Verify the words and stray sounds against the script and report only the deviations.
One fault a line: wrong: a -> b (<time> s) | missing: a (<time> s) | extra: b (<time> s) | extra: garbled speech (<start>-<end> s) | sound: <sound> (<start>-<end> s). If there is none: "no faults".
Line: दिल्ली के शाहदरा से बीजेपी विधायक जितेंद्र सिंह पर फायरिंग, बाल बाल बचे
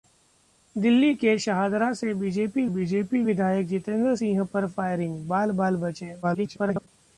extra: बीजेपी (2.7 s)
extra: garbled speech (6.2-6.9 s)